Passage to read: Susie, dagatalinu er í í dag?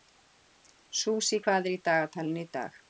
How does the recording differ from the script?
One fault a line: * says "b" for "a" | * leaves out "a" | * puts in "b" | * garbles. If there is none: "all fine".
* says "hvað" for "dagatalinu"
* puts in "dagatalinu"